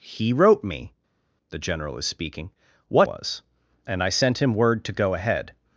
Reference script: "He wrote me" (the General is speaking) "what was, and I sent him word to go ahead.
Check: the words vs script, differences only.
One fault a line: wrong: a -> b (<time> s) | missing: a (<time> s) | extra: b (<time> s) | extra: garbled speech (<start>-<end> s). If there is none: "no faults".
no faults